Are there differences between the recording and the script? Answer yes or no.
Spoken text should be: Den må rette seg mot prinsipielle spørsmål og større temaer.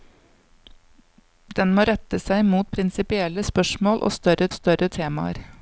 yes